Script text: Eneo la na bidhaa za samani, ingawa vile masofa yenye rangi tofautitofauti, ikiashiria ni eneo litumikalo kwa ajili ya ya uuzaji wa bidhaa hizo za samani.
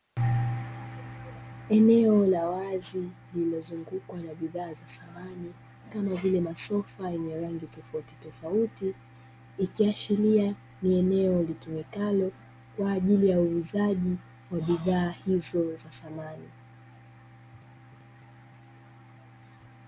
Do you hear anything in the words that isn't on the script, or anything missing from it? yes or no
yes